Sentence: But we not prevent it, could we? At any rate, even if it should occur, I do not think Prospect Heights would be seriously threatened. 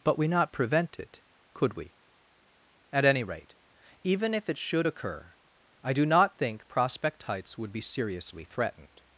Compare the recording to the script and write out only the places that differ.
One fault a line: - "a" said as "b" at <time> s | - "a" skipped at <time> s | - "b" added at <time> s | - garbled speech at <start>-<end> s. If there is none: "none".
none